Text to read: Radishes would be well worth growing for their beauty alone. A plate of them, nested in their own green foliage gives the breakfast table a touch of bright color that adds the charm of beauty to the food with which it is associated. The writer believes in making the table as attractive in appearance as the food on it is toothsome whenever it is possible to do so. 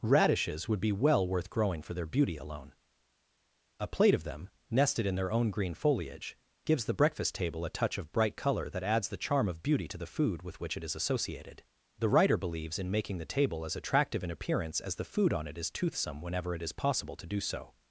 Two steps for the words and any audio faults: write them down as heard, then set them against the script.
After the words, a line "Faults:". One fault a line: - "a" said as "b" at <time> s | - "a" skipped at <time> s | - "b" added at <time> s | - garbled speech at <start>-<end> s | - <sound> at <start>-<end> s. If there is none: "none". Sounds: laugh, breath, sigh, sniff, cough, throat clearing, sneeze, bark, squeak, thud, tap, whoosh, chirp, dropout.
Radishes would be well worth growing for their beauty alone. A plate of them, nested in their own green foliage gives the breakfast table a touch of bright color that adds the charm of beauty to the food with which it is associated. The writer believes in making the table as attractive in appearance as the food on it is toothsome whenever it is possible to do so.
Faults:
none